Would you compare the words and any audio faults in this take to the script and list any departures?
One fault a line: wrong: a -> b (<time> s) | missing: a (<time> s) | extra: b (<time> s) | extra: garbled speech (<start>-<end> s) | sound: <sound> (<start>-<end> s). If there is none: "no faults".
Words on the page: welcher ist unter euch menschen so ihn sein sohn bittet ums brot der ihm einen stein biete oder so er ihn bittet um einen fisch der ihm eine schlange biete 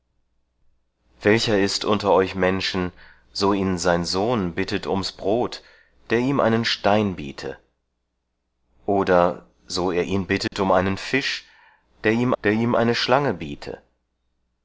sound: dropout (10.5-10.5 s)
extra: der ihm (12.4 s)